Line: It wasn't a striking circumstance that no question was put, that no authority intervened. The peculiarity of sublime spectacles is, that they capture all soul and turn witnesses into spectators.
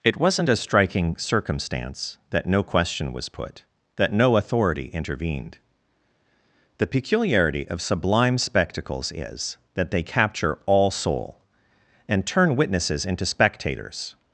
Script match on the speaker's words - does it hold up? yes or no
yes